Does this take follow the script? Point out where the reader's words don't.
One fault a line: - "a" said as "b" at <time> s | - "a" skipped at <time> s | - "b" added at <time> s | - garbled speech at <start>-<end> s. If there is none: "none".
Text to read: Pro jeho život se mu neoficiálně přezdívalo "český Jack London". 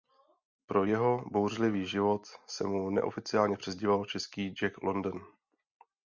- "bouřlivý" added at 1.3 s